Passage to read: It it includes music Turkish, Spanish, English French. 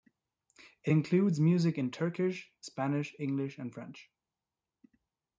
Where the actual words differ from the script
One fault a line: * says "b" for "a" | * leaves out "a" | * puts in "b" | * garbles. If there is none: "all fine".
* leaves out "it"
* puts in "in"
* puts in "and"